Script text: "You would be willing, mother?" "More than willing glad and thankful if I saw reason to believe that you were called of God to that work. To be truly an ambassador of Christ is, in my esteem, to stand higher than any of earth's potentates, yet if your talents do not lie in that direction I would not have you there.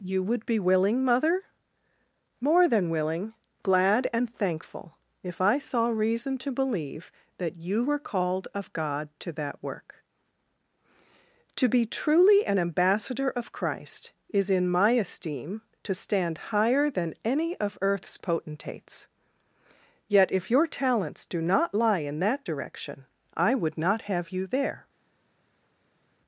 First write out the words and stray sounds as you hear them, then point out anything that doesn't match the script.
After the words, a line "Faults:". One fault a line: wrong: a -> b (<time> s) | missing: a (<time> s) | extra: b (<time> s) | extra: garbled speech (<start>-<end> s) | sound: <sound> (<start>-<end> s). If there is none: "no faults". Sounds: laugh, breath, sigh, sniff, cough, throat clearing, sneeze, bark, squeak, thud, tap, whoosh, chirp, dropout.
"You would be willing, mother?" "More than willing glad and thankful if I saw reason to believe that you were called of God to that work. To be truly an ambassador of Christ is, in my esteem, to stand higher than any of earth's potentates, yet if your talents do not lie in that direction I would not have you there.
Faults:
no faults